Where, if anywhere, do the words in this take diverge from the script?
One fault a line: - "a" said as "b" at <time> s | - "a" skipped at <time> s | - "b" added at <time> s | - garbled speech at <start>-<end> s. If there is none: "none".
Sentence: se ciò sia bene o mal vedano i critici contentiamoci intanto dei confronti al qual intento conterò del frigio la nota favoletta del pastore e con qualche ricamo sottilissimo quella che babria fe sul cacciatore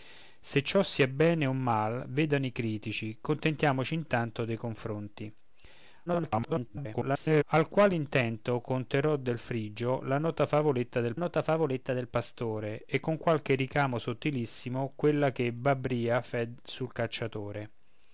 - garbled speech at 6.1-7.4 s
- "nota favoletta del" added at 11.1 s